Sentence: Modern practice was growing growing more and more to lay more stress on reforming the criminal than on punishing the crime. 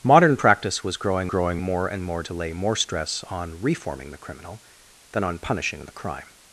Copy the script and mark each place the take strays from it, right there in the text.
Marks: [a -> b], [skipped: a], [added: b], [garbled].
Modern practice was growing growing more and more to lay more stress on reforming the criminal than on punishing the crime.